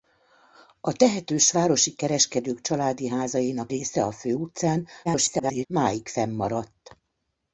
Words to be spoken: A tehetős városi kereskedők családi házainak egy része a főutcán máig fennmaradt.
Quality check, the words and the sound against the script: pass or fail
fail